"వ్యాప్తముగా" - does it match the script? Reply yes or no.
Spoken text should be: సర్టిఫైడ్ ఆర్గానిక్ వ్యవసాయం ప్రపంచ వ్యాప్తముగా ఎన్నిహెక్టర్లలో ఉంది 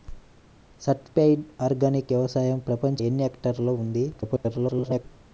no